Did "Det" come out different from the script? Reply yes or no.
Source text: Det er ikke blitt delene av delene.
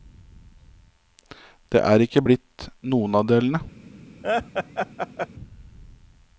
no